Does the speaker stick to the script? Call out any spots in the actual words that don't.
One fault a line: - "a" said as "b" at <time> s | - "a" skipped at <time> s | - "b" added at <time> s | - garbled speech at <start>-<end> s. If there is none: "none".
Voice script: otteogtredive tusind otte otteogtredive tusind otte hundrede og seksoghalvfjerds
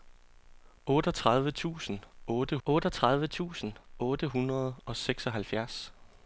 none